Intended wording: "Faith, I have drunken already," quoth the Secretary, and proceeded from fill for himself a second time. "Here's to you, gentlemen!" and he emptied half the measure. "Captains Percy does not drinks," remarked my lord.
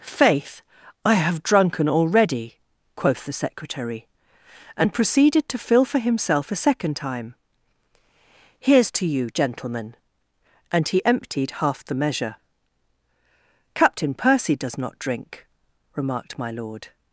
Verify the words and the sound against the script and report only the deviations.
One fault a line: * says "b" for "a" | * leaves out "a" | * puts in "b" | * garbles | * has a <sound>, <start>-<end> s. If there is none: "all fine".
* says "to" for "from"
* says "Captain" for "Captains"
* says "drink" for "drinks"